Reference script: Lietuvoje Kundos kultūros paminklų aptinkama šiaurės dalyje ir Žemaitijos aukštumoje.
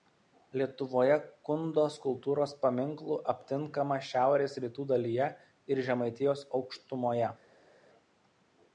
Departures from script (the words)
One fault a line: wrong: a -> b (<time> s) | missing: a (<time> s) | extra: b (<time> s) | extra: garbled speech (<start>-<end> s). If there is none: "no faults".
extra: rytų (4.6 s)